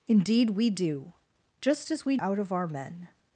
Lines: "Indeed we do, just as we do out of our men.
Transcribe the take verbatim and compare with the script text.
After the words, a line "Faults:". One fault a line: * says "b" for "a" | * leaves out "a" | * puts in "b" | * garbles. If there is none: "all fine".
"Indeed we do, just as we out of our men.
Faults:
* leaves out "do"